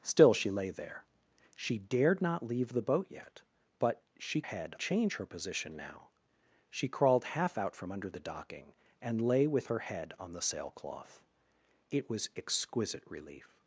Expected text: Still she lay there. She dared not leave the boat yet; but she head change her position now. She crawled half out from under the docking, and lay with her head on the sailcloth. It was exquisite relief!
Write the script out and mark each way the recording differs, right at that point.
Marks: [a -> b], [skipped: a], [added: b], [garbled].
Still she lay there. She dared not leave the boat yet; but she head change her position now. She crawled half out from under the docking, and lay with her head on the sailcloth. It was exquisite relief!